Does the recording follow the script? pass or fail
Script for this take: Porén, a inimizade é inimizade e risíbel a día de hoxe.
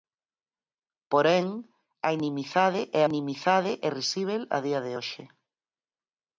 pass